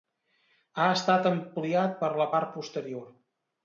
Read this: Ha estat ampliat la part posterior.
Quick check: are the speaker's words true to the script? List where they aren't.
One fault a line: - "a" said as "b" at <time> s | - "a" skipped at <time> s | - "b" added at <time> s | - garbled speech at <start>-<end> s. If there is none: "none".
- "per" added at 2.0 s